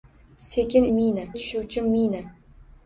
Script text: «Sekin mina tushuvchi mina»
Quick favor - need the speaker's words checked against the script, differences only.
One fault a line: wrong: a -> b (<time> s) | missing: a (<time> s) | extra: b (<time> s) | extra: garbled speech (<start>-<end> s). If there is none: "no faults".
no faults